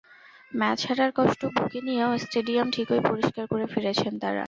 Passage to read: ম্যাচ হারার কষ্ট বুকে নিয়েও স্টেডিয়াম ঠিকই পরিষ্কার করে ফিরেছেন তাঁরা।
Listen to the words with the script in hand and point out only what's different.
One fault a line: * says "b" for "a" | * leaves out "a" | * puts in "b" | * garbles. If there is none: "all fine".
all fine